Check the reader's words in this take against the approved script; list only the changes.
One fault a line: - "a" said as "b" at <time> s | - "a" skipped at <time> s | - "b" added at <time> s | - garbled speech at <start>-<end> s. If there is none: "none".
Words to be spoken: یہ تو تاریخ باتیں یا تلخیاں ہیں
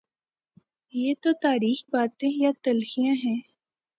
none